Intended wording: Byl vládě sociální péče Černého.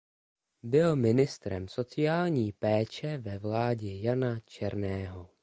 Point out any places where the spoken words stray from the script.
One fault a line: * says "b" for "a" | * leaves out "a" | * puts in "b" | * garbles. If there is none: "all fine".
* says "ministrem" for "vládě"
* puts in "ve vládě Jana"